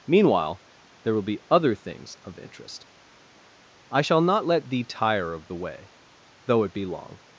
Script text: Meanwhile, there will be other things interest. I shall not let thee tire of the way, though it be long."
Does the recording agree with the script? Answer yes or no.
no